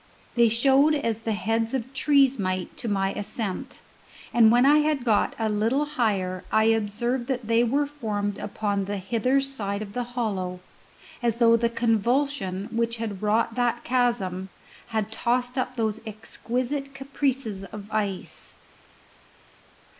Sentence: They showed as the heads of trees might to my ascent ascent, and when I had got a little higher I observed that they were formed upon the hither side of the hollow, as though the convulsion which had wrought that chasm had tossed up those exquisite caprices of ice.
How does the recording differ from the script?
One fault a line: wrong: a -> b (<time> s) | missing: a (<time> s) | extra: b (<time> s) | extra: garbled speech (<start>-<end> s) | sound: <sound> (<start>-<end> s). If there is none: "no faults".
missing: ascent (3.8 s)